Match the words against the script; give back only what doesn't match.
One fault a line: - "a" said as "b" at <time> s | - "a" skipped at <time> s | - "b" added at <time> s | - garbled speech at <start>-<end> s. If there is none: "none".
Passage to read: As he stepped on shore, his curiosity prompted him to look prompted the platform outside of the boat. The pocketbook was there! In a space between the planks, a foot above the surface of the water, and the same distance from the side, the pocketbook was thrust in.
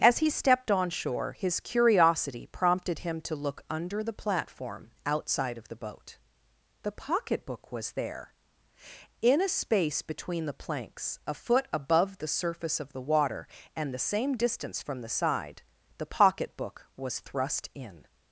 - "prompted" said as "under" at 3.7 s